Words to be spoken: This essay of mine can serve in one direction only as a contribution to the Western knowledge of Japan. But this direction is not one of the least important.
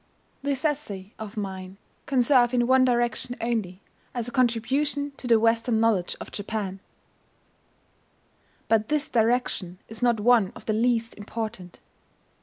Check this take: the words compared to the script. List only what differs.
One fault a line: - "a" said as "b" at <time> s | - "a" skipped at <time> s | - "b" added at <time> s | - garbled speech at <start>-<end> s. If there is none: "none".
none